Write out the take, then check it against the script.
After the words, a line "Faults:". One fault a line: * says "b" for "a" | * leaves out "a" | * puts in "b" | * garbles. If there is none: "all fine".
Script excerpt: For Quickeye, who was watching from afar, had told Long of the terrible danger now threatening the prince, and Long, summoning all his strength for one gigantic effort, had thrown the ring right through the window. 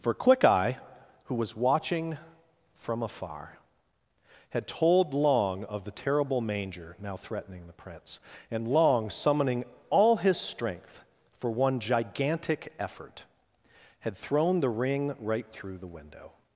For Quickeye, who was watching from afar, had told Long of the terrible manger now threatening the prince, and Long, summoning all his strength for one gigantic effort, had thrown the ring right through the window.
Faults:
* says "manger" for "danger"